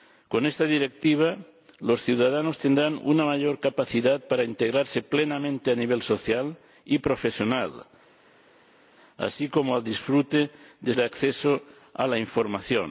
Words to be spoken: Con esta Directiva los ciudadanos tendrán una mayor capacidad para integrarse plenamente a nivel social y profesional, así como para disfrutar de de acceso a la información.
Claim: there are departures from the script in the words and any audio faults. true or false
false